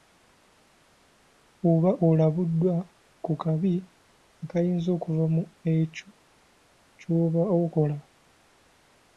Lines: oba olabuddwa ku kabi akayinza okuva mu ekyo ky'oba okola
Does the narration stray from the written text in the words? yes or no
no